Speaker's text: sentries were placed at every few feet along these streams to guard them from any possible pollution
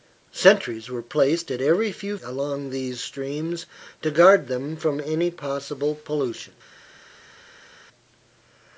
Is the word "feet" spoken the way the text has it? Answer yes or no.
no